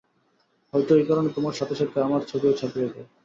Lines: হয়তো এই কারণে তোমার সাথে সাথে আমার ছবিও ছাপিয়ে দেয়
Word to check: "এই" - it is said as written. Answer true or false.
true